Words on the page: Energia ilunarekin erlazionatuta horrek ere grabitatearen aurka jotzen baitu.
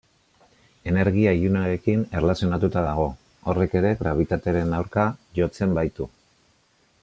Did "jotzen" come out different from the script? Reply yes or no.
no